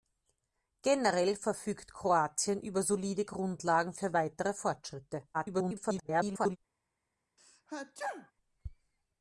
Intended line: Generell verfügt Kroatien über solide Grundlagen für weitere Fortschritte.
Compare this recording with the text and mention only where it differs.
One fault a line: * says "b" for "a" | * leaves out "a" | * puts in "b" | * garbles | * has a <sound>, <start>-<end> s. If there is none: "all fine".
* garbles
* has a sneeze, 7.4-8.3 s